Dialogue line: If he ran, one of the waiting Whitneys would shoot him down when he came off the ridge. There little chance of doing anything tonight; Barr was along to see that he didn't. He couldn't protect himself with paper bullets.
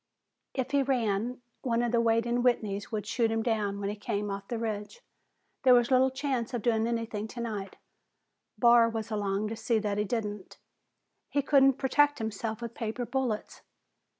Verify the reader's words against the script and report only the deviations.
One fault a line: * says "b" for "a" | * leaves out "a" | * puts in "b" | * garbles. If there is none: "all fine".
* puts in "was"